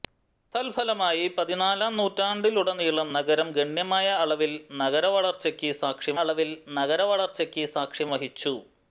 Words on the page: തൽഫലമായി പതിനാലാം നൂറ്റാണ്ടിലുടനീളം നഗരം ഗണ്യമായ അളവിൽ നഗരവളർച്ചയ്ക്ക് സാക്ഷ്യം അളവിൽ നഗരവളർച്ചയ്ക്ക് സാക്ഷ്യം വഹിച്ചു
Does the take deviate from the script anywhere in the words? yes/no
no